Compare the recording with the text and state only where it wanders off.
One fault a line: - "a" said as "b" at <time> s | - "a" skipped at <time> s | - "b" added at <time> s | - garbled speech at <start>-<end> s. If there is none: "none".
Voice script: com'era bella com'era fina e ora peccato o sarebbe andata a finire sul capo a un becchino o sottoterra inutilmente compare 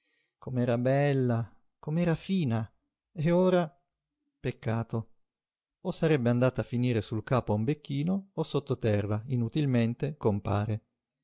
none